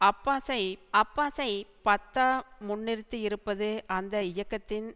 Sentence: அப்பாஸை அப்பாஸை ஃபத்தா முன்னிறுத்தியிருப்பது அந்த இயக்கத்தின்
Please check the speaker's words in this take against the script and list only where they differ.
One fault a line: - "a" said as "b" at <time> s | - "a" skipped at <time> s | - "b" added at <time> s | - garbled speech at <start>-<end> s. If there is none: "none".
none